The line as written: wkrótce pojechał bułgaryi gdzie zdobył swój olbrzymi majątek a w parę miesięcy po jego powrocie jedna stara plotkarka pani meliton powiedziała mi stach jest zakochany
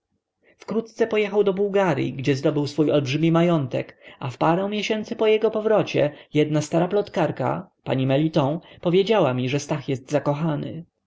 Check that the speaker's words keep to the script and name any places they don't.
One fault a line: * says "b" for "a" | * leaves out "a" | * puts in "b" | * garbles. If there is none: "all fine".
* puts in "do"
* puts in "że"